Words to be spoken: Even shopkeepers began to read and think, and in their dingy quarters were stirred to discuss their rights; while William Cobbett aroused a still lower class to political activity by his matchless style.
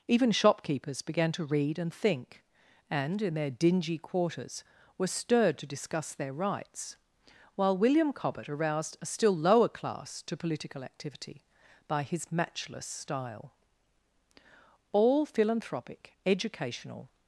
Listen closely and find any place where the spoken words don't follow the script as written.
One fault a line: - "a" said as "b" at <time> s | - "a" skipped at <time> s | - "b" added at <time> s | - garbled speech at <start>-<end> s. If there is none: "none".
- "All philanthropic educational" added at 14.9 s